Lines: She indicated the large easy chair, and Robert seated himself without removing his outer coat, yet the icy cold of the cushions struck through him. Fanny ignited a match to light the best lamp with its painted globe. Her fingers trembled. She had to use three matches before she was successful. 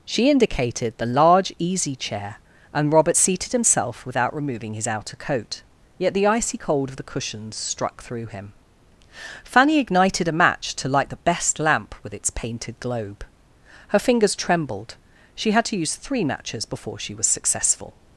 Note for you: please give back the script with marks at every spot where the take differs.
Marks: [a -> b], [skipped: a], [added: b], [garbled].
She indicated the large easy chair, and Robert seated himself without removing his outer coat, yet the icy cold of the cushions struck through him. Fanny ignited a match to light the best lamp with its painted globe. Her fingers trembled. She had to use three matches before she was successful.